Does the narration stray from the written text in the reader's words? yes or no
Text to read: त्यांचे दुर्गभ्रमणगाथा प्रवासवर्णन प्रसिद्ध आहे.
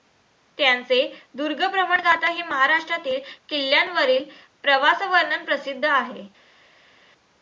yes